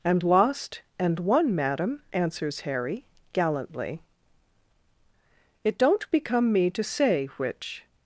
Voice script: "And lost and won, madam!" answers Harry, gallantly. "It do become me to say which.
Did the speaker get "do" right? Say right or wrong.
wrong